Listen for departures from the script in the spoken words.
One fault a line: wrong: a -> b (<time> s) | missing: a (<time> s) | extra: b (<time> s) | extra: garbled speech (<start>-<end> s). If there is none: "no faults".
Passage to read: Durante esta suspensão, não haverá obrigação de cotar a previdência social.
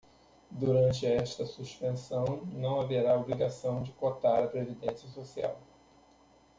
no faults